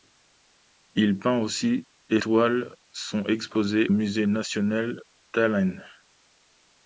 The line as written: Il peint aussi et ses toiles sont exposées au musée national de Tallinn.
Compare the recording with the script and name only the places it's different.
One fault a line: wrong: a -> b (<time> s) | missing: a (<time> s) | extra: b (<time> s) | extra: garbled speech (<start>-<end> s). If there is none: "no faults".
missing: ses (2.2 s)
missing: au (3.9 s)
missing: de (5.0 s)